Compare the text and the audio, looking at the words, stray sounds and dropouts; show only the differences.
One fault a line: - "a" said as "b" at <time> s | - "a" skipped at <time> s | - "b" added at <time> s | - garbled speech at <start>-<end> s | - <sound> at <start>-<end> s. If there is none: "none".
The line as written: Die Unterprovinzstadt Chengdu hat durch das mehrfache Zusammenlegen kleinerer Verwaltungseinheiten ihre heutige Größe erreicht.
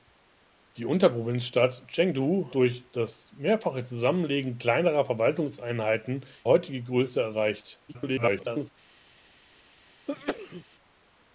- "hat" skipped at 2.5 s
- "ihre" skipped at 6.2 s
- garbled speech at 7.9-8.7 s
- sneeze at 10.1-10.6 s